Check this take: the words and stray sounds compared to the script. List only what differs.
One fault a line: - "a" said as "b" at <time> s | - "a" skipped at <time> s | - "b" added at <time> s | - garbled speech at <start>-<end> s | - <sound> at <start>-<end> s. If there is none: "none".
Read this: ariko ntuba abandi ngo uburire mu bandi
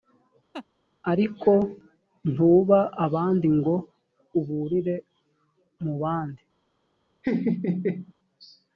- laugh at 0.5-0.7 s
- laugh at 7.2-8.1 s